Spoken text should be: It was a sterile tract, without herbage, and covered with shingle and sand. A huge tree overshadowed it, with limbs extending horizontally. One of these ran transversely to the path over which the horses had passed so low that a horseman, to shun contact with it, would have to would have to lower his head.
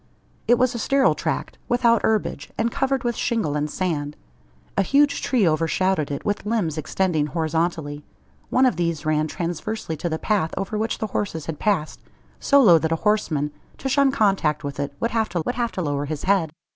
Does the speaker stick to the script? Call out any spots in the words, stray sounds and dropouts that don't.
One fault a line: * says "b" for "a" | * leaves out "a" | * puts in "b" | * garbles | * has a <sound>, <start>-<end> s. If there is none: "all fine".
all fine